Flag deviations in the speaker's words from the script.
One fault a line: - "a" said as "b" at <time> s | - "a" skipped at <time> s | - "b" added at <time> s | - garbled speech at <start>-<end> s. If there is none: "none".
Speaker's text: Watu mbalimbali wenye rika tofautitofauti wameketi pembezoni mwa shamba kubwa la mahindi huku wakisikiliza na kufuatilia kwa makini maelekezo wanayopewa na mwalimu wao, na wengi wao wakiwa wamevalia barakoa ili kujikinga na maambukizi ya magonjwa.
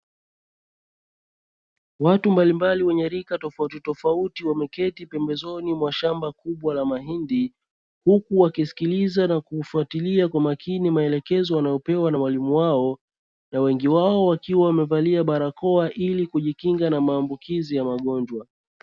none